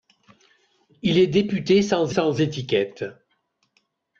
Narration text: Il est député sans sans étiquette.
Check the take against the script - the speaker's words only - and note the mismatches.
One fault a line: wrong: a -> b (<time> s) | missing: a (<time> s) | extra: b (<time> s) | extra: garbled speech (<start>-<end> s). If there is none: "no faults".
no faults